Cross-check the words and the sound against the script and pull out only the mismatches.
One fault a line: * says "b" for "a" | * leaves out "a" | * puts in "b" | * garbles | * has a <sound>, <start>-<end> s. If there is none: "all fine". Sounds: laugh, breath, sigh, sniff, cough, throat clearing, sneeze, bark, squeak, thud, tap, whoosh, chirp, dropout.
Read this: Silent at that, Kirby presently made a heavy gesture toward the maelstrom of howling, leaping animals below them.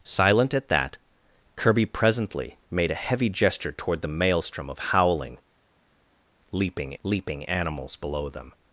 * puts in "leaping"